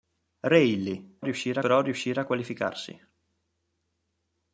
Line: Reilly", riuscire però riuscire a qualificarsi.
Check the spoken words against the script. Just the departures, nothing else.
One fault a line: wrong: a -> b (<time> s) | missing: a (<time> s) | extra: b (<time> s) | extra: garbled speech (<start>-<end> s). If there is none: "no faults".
no faults